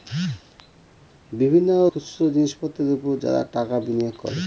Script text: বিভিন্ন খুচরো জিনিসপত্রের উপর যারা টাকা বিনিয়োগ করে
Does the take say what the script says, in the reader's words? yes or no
yes